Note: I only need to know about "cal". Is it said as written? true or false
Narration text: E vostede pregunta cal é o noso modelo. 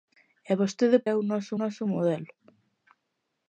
false